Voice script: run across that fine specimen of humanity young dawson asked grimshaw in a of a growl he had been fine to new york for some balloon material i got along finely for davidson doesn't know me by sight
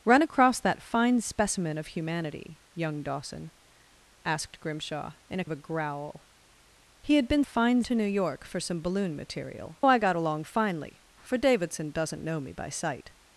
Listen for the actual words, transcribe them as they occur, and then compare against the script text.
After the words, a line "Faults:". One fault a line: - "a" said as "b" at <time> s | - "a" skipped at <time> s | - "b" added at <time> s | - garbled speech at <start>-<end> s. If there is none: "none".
run across that fine specimen of humanity young dawson asked grimshaw in a of a growl he had been fine to new york for some balloon material i got along finely for davidson doesn't know me by sight
Faults:
none